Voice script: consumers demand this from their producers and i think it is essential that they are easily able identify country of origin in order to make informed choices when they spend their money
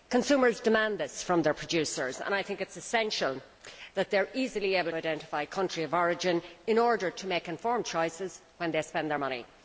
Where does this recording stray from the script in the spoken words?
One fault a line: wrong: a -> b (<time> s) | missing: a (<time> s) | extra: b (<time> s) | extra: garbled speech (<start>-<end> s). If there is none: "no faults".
no faults